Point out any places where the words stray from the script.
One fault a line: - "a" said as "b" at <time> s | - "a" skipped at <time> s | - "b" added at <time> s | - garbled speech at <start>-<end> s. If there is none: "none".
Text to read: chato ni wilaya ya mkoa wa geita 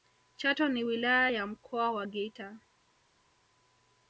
none